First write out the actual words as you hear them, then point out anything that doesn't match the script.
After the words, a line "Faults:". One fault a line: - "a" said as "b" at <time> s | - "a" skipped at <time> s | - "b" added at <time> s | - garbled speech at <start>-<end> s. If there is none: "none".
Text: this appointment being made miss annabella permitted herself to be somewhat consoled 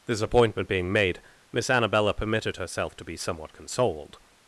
this appointment being made miss annabella permitted herself to be somewhat consoled
Faults:
none